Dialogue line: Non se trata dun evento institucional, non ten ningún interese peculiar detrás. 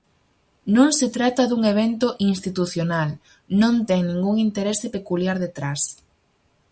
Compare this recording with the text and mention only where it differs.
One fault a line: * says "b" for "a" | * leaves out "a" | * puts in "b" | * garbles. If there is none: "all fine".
all fine